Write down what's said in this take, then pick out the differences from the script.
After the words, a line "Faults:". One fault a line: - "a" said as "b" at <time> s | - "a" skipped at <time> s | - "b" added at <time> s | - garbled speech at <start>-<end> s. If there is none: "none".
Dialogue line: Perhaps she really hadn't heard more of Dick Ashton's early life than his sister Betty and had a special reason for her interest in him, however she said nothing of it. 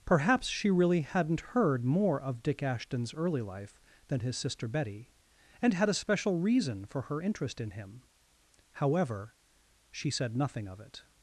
Perhaps she really hadn't heard more of Dick Ashton's early life than his sister Betty and had a special reason for her interest in him, however she said nothing of it.
Faults:
none